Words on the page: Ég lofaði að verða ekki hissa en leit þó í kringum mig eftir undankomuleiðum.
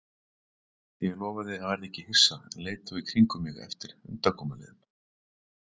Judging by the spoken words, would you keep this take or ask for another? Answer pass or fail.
pass